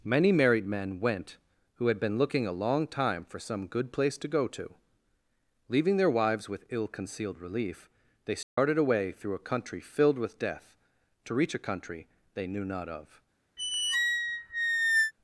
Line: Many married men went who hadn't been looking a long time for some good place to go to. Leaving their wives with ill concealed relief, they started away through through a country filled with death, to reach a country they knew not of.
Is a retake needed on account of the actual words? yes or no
yes